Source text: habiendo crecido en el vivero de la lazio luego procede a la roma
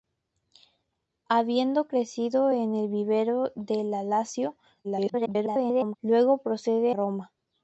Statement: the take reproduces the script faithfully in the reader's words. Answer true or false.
false